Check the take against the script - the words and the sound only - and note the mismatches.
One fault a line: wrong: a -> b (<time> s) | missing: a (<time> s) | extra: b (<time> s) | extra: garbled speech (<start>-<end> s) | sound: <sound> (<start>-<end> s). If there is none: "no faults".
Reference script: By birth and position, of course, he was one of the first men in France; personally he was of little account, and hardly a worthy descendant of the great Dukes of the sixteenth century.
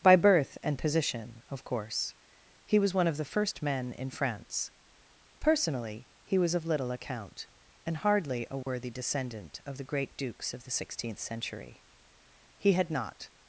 sound: dropout (8.6-8.7 s)
extra: He had not (12.6 s)